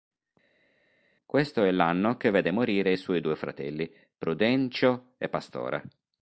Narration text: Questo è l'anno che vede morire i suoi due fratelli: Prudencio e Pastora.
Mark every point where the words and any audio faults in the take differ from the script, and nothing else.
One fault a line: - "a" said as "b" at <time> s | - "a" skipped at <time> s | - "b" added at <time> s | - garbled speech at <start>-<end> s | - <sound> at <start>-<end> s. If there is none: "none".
none